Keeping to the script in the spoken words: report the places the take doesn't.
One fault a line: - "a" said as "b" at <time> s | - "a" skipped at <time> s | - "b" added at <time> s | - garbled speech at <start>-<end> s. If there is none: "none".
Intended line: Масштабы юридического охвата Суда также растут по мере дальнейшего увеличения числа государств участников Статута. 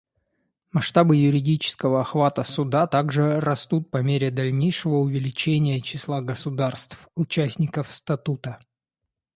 none